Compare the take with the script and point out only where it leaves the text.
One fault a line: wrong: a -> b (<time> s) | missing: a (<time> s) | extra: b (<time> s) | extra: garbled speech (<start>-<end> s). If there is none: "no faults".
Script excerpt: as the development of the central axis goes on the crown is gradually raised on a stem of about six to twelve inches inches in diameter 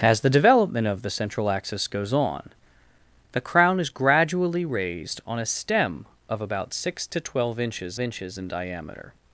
no faults